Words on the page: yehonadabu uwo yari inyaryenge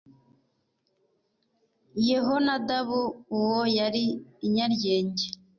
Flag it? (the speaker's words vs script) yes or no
no